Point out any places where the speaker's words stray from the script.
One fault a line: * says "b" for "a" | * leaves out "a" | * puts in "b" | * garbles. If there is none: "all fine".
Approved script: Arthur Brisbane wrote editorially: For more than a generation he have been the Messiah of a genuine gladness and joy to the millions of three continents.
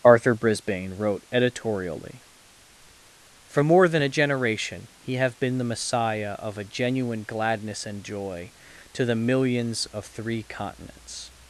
all fine